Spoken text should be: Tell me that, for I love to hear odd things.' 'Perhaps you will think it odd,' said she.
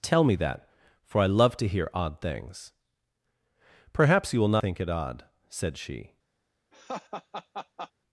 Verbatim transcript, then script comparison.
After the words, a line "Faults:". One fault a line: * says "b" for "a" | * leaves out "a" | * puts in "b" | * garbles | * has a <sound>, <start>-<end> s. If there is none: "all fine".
Tell me that, for I love to hear odd things.' 'Perhaps you will think it odd,' said she.
Faults:
* has a laugh, 6.7-7.9 s